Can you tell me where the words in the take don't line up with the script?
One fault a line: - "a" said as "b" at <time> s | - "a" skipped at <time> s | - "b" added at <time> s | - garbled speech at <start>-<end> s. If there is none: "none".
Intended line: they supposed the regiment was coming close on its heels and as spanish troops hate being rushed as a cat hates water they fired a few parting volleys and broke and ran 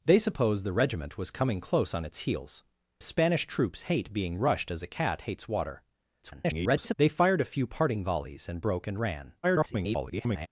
- "and as" skipped at 2.6 s
- garbled speech at 6.2-6.9 s
- garbled speech at 9.4-10.5 s